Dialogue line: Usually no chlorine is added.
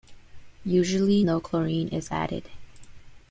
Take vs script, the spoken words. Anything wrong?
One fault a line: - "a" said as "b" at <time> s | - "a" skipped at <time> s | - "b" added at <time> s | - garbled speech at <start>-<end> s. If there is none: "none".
none